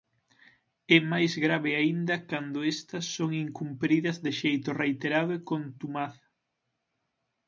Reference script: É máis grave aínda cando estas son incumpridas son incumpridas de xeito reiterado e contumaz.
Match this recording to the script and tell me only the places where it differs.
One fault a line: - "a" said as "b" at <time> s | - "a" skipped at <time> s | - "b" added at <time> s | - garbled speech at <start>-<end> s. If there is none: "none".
- "son incumpridas" skipped at 4.2 s